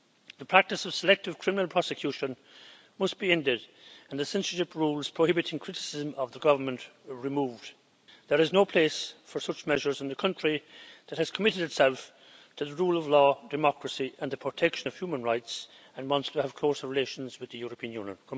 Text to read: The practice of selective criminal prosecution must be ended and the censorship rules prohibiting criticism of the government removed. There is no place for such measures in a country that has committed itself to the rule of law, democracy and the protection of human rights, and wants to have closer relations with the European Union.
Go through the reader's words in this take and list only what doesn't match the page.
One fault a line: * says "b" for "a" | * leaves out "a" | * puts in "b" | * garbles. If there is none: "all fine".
all fine